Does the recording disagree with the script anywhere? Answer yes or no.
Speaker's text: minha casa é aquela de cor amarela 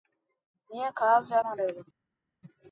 yes